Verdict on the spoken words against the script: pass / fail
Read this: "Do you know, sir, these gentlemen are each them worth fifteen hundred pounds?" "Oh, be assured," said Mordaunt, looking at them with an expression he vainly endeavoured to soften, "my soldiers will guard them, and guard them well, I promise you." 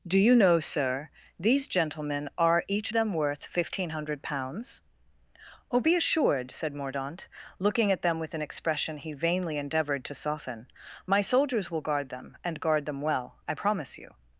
pass